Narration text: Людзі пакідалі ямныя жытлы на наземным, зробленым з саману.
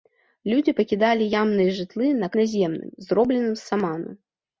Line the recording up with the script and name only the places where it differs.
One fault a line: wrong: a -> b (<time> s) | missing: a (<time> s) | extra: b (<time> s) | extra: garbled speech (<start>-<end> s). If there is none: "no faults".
no faults